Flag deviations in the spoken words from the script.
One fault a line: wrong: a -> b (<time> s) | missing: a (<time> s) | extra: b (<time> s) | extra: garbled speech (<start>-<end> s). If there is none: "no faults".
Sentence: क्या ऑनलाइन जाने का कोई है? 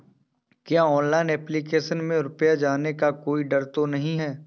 extra: एप्लीकेशन में रुपया (1.3 s)
extra: डर तो नही (3.4 s)